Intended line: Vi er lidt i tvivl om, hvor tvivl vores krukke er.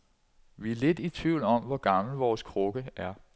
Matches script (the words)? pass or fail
fail